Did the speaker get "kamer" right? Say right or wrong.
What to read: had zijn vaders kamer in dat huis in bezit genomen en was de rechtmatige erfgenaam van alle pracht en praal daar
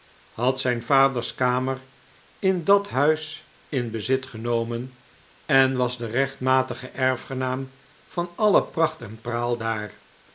right